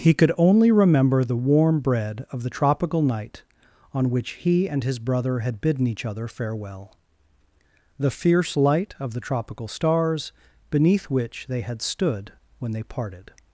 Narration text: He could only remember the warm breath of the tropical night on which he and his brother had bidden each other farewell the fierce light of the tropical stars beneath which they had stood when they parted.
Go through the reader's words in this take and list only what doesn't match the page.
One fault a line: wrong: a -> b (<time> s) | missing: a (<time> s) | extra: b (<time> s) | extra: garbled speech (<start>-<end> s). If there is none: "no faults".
wrong: breath -> bread (1.8 s)